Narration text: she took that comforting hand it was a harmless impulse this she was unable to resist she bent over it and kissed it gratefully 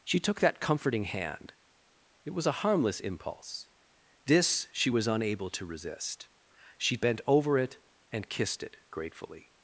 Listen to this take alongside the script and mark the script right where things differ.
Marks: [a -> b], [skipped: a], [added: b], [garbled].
she took that comforting hand it was a harmless impulse this she was unable to resist she bent over it and kissed it gratefully